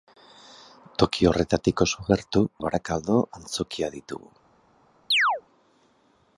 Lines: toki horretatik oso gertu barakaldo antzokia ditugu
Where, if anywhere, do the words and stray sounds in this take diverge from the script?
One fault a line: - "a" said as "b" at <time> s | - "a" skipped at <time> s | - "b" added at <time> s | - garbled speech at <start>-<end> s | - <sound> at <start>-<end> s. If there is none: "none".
- chirp at 5.1-5.4 s